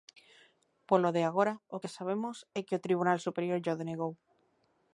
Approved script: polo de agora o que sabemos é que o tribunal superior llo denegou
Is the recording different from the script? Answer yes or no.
no